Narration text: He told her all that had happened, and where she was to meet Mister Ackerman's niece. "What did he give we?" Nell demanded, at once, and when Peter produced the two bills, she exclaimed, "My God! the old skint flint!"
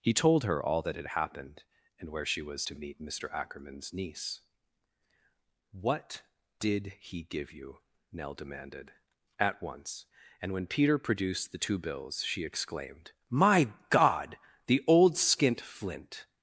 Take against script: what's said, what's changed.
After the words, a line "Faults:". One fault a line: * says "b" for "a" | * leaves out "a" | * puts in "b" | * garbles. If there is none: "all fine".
He told her all that had happened, and where she was to meet Mister Ackerman's niece. "What did he give you?" Nell demanded, at once, and when Peter produced the two bills, she exclaimed, "My God! the old skint flint!"
Faults:
* says "you" for "we"